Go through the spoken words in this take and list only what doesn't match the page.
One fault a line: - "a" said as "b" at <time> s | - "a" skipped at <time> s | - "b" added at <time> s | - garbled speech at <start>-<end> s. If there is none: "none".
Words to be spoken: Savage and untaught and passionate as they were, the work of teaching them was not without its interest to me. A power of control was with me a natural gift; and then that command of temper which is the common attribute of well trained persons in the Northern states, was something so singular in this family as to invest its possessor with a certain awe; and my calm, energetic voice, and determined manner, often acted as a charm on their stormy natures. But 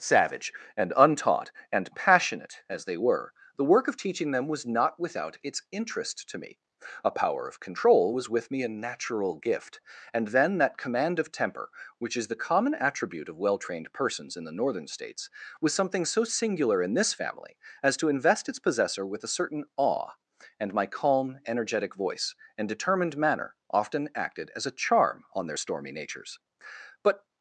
none